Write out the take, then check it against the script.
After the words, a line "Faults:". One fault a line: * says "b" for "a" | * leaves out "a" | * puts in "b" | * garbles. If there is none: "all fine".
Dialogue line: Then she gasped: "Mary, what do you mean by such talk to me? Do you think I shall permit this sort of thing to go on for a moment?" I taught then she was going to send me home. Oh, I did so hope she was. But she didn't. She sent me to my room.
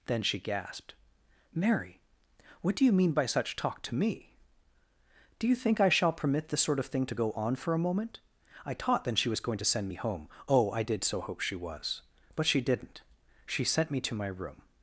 Then she gasped: "Mary, what do you mean by such talk to me? Do you think I shall permit this sort of thing to go on for a moment?" I taught then she was going to send me home. Oh, I did so hope she was. But she didn't. She sent me to my room.
Faults:
all fine